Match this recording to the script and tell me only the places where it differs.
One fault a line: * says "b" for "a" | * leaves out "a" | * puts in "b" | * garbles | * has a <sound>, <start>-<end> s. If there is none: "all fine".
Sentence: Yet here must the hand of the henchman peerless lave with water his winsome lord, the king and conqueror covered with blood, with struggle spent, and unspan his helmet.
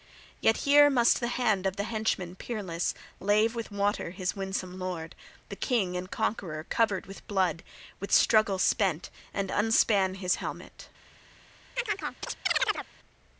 * has a chirp, 11.8-12.9 s